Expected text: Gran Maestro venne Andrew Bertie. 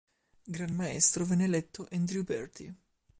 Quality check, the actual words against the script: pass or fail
fail